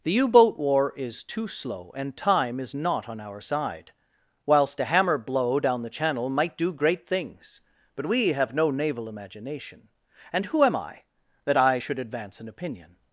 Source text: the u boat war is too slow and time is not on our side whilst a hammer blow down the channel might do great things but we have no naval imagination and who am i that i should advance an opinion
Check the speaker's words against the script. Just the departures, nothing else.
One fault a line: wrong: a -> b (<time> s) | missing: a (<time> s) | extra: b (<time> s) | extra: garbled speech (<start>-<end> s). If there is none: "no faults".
no faults